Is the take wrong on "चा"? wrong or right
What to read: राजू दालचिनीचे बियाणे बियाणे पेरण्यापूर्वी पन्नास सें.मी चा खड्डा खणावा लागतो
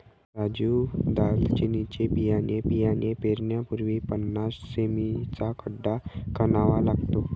right